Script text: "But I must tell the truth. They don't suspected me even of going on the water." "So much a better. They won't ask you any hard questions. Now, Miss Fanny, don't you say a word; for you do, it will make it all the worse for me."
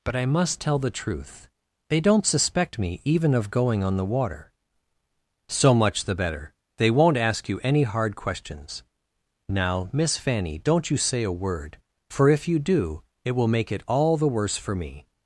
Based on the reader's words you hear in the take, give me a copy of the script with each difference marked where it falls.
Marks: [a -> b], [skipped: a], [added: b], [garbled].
"But I must tell the truth. They don't [suspected -> suspect] me even of going on the water." "So much [a -> the] better. They won't ask you any hard questions. Now, Miss Fanny, don't you say a word; for [added: if] you do, it will make it all the worse for me."